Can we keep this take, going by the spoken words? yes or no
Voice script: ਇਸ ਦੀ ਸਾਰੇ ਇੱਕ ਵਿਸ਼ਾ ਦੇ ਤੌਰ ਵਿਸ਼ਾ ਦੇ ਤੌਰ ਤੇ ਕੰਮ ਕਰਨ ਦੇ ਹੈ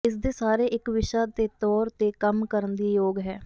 no